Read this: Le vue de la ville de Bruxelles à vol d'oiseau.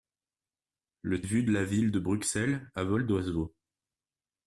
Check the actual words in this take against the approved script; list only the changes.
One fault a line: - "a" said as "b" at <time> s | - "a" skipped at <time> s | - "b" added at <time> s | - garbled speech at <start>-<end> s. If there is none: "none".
none